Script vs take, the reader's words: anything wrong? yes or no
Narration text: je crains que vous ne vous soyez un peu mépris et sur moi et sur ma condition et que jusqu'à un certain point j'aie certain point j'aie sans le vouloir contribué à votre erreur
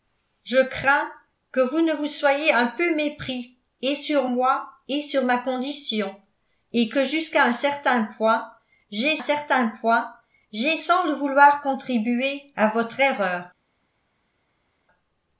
no